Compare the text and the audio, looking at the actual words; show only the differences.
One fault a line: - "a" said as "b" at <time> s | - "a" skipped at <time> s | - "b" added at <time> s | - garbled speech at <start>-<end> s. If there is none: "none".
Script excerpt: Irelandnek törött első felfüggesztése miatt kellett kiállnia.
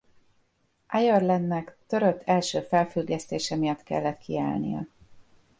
none